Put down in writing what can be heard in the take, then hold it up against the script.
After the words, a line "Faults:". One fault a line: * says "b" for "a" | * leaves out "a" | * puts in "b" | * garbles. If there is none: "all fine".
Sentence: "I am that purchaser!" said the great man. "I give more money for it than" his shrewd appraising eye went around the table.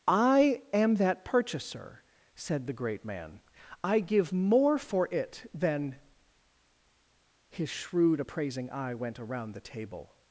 "I am that purchaser!" said the great man. "I give more for it than" his shrewd appraising eye went around the table.
Faults:
* leaves out "money"